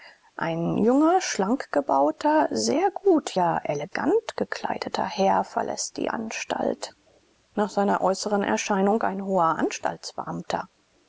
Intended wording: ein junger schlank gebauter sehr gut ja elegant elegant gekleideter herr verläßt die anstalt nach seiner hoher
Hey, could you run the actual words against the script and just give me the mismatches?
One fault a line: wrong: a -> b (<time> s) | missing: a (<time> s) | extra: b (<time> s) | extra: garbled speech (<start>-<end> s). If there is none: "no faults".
missing: elegant (4.4 s)
extra: äußeren erscheinung ein (8.0 s)